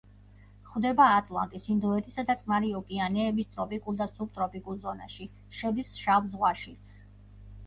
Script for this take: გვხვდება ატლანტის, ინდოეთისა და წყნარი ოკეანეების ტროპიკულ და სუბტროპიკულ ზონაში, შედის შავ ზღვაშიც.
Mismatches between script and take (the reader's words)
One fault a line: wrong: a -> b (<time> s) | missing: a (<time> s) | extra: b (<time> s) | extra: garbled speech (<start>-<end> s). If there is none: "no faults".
no faults